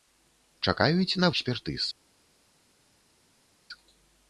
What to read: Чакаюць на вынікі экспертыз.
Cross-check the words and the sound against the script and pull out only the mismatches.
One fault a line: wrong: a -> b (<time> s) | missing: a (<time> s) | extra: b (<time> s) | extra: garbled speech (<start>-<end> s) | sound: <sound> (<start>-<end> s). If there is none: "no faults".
missing: вынікі (1.3 s)